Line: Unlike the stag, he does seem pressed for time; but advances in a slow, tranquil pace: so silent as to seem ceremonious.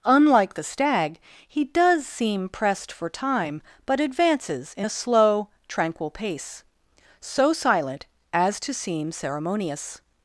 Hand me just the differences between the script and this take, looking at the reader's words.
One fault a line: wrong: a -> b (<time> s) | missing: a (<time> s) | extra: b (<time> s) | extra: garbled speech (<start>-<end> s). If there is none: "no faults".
no faults